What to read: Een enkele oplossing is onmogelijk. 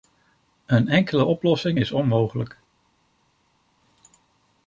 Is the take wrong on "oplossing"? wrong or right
right